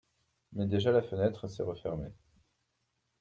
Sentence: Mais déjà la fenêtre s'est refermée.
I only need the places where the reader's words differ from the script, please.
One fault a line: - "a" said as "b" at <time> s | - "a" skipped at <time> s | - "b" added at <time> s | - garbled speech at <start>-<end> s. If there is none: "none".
none